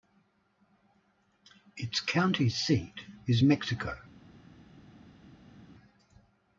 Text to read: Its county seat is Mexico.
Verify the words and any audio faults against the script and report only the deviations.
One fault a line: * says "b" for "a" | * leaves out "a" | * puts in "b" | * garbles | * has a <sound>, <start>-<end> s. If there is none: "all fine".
all fine